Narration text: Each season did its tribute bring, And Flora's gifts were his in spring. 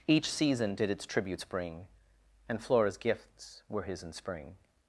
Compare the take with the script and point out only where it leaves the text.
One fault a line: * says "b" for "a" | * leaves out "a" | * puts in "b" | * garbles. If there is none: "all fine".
* says "tributes" for "tribute"